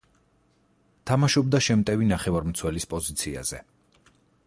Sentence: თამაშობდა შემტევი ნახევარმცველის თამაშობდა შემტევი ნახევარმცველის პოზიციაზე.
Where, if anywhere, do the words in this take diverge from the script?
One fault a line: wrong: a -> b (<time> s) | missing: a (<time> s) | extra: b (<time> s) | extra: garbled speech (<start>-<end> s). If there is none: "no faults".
missing: თამაშობდა შემტევი ნახევარმცველის (2.9 s)